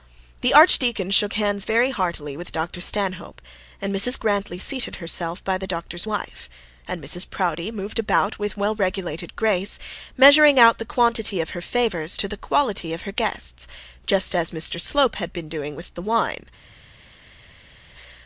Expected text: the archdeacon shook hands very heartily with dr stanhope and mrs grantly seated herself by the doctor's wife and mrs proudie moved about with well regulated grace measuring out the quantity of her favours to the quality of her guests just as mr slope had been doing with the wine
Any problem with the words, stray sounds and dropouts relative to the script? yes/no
no